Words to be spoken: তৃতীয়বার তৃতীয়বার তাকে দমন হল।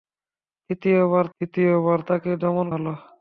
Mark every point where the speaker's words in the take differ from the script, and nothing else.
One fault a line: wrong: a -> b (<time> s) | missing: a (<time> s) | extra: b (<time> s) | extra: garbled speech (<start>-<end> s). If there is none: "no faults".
no faults